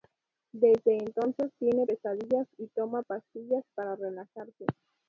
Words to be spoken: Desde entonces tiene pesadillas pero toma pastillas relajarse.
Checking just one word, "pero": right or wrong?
wrong